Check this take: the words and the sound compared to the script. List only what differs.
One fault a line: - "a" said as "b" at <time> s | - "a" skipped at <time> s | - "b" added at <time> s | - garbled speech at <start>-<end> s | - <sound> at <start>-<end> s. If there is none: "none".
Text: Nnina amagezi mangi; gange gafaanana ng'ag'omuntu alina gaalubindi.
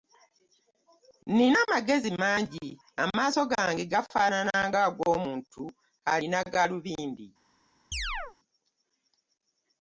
- "amaaso" added at 3.0 s
- chirp at 7.9-8.4 s